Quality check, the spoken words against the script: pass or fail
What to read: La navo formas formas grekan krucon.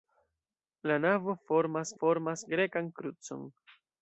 pass